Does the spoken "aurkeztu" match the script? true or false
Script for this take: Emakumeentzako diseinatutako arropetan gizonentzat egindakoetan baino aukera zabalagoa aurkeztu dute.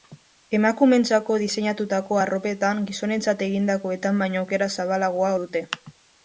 false